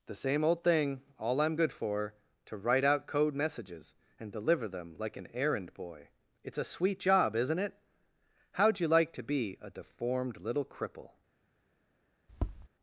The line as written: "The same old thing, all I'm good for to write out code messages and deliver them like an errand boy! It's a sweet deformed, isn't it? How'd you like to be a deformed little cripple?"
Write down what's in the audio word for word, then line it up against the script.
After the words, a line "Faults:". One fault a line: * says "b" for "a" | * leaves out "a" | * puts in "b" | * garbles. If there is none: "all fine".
"The same old thing, all I'm good for to write out code messages and deliver them like an errand boy! It's a sweet job, isn't it? How'd you like to be a deformed little cripple?"
Faults:
* says "job" for "deformed"